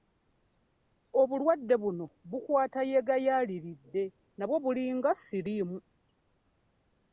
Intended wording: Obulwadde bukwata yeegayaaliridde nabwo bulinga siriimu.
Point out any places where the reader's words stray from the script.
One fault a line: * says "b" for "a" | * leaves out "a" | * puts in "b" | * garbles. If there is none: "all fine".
* puts in "buno"